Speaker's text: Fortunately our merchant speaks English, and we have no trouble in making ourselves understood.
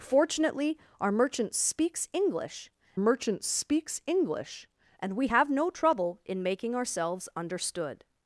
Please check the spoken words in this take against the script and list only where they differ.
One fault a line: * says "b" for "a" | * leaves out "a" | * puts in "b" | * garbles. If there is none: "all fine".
* puts in "merchant speaks English"